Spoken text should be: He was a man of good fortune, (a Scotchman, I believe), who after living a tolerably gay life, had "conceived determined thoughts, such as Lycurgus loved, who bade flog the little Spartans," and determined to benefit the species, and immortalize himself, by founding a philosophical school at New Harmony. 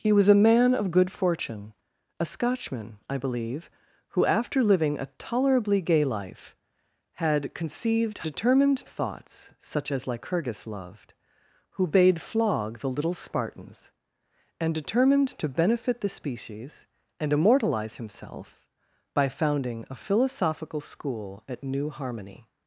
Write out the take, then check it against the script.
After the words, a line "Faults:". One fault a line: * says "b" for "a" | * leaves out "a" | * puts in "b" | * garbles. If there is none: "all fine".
He was a man of good fortune, (a Scotchman, I believe), who after living a tolerably gay life, had "conceived determined thoughts, such as Lycurgus loved, who bade flog the little Spartans," and determined to benefit the species, and immortalize himself, by founding a philosophical school at New Harmony.
Faults:
all fine